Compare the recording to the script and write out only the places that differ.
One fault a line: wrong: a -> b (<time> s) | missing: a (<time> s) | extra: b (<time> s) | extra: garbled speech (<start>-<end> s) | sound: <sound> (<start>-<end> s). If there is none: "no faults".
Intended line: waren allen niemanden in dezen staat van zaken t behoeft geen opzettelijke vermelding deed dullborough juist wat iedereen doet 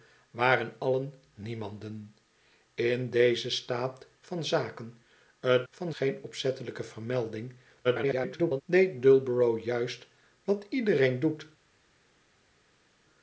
wrong: behoeft -> van (5.7 s)
extra: garbled speech (7.8-8.6 s)